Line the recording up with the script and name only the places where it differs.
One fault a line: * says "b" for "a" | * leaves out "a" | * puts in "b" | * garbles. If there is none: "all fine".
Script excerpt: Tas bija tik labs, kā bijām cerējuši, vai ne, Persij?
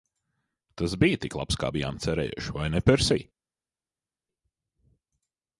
all fine